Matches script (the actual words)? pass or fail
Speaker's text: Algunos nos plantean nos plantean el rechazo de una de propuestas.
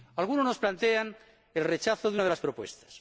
fail